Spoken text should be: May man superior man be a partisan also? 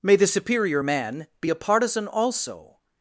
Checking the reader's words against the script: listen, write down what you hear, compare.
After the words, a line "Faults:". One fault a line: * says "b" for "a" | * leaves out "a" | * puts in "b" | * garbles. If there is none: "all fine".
May the superior man be a partisan also?
Faults:
* says "the" for "man"